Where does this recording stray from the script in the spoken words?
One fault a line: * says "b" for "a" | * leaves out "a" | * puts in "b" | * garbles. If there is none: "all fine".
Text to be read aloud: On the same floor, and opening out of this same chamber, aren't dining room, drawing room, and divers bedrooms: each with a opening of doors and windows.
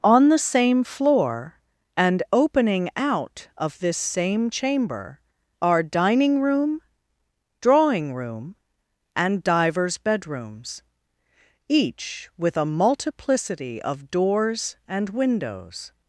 * says "are" for "aren't"
* says "multiplicity" for "opening"